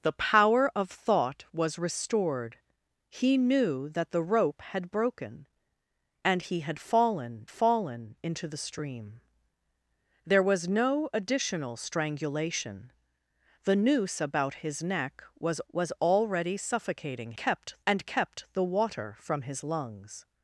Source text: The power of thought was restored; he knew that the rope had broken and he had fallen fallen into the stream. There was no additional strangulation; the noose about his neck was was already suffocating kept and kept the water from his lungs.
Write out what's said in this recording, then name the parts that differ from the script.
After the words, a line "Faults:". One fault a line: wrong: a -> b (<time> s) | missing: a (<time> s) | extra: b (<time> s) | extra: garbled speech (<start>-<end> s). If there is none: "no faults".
The power of thought was restored; he knew that the rope had broken and he had fallen fallen into the stream. There was no additional strangulation; the noose about his neck was was already suffocating kept and kept the water from his lungs.
Faults:
no faults